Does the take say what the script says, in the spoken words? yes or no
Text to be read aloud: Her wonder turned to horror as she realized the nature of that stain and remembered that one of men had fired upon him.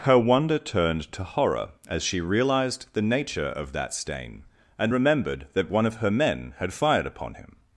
no